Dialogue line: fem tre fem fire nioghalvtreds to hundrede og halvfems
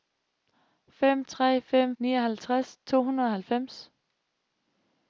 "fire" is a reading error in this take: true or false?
true